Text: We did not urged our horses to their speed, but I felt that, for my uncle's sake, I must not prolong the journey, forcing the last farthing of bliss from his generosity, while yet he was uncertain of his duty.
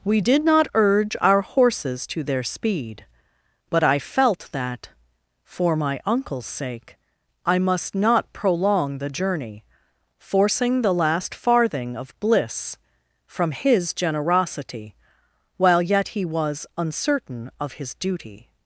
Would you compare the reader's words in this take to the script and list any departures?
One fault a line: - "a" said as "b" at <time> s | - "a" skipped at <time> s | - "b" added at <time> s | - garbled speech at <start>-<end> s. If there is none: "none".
- "urged" said as "urge" at 0.7 s